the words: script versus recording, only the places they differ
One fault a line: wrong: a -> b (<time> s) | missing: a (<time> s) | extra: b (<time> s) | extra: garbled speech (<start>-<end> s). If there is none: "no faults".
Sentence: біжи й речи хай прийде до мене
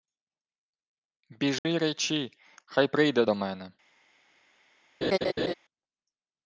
no faults